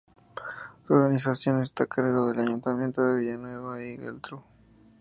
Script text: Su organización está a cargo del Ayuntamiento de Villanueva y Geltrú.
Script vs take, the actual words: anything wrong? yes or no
no